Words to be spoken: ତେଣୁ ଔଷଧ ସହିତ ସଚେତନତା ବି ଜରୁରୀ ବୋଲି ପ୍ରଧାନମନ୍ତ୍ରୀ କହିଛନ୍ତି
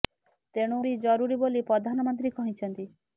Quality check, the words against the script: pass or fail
fail